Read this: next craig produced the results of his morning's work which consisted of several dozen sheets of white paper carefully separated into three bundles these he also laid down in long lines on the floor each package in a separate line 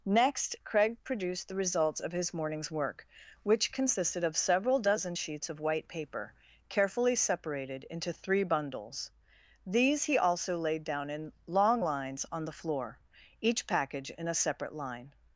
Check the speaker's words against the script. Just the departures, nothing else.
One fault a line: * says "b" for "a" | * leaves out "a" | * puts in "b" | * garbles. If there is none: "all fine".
all fine